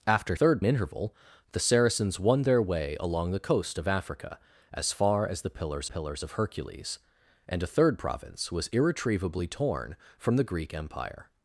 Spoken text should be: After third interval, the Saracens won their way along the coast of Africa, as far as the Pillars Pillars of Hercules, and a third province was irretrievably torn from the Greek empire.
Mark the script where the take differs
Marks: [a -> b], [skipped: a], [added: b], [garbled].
After third interval, the Saracens won their way along the coast of Africa, as far as the Pillars Pillars of Hercules, and a third province was irretrievably torn from the Greek empire.